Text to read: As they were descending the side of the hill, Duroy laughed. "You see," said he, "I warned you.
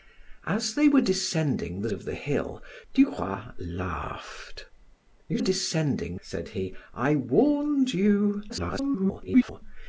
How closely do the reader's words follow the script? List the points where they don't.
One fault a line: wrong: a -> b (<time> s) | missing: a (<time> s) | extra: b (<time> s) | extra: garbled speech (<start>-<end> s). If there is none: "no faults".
missing: side (1.9 s)
wrong: see -> descending (5.4 s)
extra: garbled speech (8.5-9.6 s)